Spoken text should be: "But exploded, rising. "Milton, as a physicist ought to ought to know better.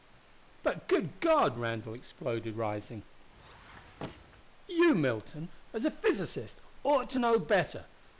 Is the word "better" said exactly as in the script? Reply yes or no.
yes